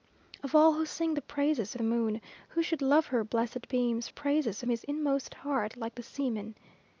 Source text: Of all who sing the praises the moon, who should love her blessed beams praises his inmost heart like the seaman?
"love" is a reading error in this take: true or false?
false